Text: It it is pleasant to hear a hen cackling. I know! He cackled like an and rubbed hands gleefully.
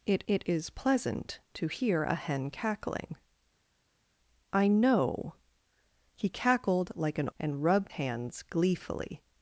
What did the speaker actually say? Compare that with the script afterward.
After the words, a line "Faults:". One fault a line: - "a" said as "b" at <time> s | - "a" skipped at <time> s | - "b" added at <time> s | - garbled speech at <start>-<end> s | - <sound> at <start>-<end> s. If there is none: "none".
It it is pleasant to hear a hen cackling. I know! He cackled like an and rubbed hands gleefully.
Faults:
none